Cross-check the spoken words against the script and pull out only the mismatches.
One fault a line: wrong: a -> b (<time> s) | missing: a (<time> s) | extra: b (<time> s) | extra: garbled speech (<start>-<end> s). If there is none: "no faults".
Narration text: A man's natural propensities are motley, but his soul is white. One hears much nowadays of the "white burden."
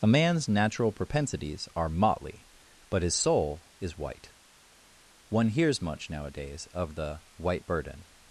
no faults